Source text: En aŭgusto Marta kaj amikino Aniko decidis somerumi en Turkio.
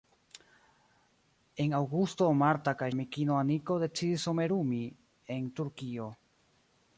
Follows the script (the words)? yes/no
yes